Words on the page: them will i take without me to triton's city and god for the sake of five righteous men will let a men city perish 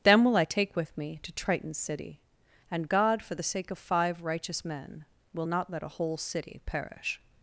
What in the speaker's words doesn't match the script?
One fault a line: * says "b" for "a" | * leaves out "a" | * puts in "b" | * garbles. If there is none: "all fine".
* says "with" for "without"
* puts in "not"
* says "whole" for "men"